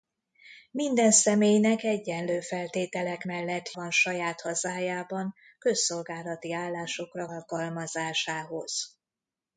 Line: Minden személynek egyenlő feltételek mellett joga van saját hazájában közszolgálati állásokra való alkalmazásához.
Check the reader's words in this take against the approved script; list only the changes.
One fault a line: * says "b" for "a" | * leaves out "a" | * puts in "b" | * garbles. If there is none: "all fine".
* leaves out "joga"
* leaves out "való"